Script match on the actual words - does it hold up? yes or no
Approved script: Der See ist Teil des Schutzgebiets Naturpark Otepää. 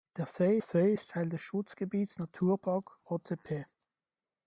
no